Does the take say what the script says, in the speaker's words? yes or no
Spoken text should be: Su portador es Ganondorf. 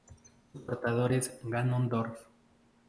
yes